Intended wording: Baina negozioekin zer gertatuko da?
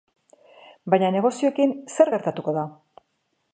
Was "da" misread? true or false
false